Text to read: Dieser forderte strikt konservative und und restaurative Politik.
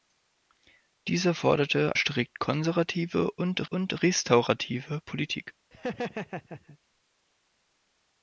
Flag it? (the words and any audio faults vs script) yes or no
yes